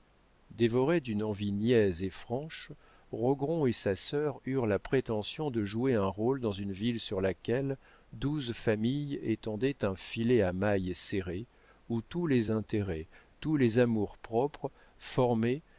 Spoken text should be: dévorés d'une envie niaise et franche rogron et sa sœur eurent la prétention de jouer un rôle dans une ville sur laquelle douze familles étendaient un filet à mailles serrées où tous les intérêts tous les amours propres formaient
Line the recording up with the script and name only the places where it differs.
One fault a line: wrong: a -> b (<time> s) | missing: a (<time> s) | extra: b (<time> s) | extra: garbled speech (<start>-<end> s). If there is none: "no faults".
no faults